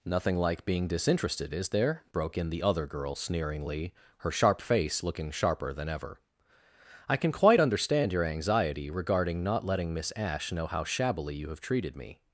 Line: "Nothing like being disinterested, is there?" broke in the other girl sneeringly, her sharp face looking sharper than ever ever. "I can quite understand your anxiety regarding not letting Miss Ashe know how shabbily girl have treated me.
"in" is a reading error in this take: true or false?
false